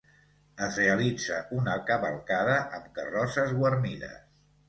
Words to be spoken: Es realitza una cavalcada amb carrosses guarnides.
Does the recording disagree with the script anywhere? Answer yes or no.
no